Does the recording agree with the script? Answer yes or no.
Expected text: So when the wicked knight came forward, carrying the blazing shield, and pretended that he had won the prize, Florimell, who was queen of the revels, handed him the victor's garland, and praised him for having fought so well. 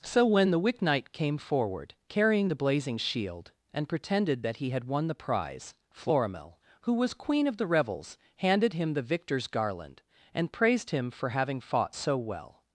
no